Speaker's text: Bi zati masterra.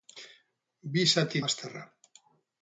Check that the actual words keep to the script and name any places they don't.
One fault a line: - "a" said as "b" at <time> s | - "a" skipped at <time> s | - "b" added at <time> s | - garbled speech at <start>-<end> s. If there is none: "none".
none